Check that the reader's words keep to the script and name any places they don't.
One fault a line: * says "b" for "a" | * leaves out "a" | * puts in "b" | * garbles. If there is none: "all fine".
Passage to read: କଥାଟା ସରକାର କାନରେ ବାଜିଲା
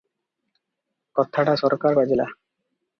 * leaves out "କାନରେ"